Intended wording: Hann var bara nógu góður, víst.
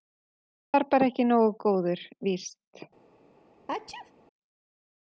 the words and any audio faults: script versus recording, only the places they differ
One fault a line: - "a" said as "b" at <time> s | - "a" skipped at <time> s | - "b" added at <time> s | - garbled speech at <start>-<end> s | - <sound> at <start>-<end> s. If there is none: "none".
- "ekki" added at 1.1 s
- sneeze at 3.7-4.1 s